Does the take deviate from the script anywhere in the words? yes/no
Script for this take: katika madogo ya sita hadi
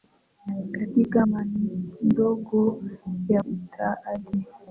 no